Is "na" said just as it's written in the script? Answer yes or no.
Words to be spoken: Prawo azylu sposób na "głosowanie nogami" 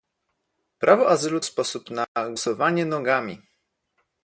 yes